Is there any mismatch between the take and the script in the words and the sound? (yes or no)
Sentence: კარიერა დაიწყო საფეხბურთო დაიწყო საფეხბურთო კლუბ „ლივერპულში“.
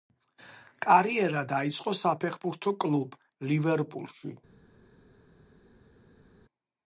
yes